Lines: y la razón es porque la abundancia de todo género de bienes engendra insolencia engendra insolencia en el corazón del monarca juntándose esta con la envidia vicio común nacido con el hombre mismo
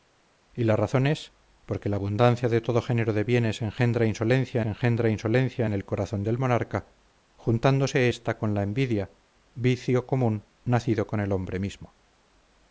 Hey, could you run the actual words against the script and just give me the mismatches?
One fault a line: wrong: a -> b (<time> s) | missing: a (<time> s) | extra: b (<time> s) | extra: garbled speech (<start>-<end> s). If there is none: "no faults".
no faults